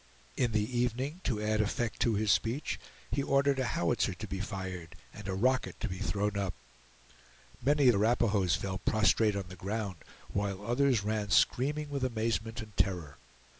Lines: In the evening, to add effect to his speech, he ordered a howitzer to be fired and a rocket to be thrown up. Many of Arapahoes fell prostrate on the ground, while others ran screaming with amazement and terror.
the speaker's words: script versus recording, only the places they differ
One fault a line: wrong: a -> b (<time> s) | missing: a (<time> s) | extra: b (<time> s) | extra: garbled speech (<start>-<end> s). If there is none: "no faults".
no faults